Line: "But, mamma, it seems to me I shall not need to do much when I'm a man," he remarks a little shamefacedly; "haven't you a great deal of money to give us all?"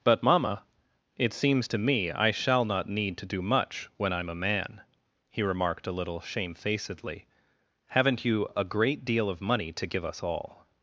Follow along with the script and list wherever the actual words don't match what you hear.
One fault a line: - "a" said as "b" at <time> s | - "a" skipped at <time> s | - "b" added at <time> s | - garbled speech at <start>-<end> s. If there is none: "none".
- "remarks" said as "remarked" at 5.4 s